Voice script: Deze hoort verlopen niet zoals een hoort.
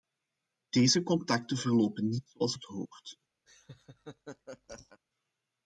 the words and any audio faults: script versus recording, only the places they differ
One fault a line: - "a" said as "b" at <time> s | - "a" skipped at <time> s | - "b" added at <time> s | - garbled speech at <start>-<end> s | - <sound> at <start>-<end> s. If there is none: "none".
- "hoort" said as "contacten" at 1.0 s
- "een" said as "het" at 2.5 s
- laugh at 3.5-5.0 s